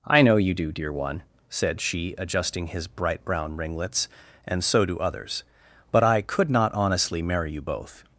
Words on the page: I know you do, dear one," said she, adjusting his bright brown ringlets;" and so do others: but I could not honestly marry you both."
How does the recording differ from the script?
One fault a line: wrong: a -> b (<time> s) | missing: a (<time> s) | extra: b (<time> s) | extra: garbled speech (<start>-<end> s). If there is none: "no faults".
no faults